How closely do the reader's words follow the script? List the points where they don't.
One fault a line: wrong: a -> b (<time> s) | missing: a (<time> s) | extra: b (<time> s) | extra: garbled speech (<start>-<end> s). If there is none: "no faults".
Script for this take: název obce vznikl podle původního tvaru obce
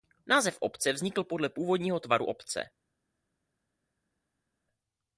no faults